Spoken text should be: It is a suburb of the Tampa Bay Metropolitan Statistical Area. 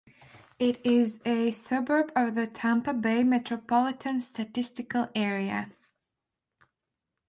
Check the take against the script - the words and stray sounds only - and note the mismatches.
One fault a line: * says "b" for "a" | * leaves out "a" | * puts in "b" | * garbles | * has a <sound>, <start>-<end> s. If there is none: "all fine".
all fine